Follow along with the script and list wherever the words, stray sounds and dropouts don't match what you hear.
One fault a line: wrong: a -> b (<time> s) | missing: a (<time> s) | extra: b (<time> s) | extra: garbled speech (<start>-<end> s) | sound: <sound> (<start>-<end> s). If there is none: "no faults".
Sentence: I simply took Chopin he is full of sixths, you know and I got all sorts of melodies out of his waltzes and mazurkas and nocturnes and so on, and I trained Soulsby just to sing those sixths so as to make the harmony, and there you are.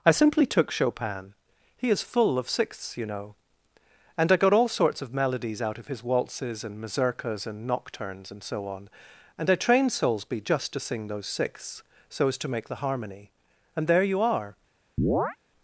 sound: chirp (15.0-15.4 s)